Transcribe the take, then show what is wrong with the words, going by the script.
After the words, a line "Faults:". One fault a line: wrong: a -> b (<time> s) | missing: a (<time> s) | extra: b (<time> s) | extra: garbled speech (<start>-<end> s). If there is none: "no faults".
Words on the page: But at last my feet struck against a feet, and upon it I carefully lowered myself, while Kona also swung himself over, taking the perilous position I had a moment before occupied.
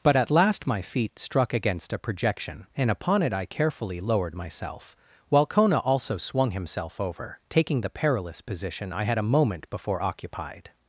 But at last my feet struck against a projection, and upon it I carefully lowered myself, while Kona also swung himself over, taking the perilous position I had a moment before occupied.
Faults:
wrong: feet -> projection (2.0 s)